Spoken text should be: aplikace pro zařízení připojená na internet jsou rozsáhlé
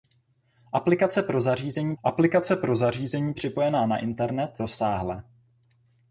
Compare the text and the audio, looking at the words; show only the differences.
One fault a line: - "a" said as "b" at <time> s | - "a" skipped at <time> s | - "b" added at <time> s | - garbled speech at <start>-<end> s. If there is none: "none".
- "aplikace pro zařízení" added at 2.0 s
- "jsou" skipped at 4.6 s